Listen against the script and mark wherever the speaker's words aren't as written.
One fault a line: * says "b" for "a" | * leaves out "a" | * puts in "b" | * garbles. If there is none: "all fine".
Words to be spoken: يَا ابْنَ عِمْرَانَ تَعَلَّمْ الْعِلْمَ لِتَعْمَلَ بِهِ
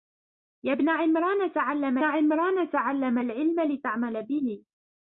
* puts in "عِمْرَانَ تَعَلَّمْ"